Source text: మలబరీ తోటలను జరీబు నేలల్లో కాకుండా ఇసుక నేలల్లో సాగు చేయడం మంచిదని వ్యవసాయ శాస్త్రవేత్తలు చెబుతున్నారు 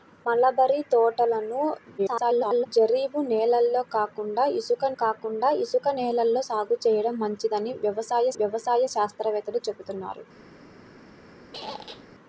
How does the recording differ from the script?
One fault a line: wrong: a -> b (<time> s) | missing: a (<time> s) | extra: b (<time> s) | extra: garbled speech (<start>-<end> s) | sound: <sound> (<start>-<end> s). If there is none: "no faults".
extra: garbled speech (2.0-2.7 s)
extra: కాకుండా ఇసుక (5.0 s)
extra: వ్యవసాయ (8.4 s)
sound: squeak (11.5-12.1 s)